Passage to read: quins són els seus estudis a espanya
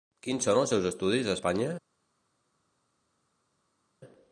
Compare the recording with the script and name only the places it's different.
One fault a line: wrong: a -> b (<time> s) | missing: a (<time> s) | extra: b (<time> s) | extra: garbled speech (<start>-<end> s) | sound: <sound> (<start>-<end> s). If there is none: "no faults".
no faults